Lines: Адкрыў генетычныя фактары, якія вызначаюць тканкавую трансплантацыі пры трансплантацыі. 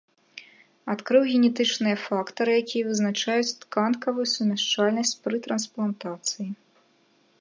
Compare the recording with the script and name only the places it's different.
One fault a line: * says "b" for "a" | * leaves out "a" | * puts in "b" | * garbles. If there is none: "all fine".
* says "сумяшчальнасць" for "трансплантацыі"